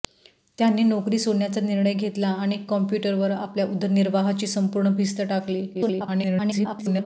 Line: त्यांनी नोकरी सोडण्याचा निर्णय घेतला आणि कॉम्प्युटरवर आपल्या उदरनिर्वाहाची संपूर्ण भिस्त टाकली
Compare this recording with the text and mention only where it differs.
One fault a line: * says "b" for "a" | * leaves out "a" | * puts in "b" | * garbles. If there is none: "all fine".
* garbles